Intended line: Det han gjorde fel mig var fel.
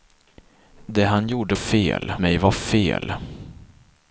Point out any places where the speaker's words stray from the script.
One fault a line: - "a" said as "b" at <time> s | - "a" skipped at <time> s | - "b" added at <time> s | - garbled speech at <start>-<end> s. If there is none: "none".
none